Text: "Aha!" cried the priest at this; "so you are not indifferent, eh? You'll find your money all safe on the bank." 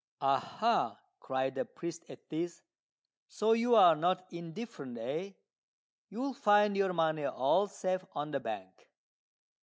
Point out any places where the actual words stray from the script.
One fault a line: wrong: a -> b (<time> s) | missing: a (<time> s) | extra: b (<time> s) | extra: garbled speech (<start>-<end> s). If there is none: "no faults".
no faults